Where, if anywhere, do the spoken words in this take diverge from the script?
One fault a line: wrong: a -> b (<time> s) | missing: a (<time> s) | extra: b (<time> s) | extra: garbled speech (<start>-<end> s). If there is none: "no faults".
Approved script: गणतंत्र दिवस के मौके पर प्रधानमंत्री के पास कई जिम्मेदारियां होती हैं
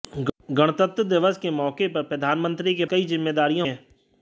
missing: पास (2.9 s)
missing: होती (3.7 s)